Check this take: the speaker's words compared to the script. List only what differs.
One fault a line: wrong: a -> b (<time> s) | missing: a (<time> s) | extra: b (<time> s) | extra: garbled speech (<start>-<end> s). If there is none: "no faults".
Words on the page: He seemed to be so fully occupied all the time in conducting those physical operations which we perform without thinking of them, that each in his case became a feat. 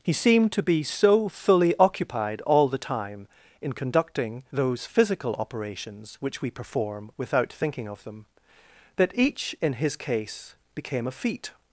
no faults